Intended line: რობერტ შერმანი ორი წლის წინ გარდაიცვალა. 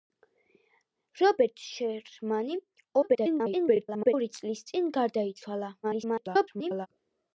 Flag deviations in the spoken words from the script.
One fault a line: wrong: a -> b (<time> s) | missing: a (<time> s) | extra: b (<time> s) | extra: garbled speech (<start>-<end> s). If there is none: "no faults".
extra: garbled speech (3.0-4.1 s)
extra: garbled speech (5.8-6.9 s)